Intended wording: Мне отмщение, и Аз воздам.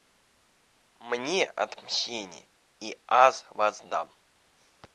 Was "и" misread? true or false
false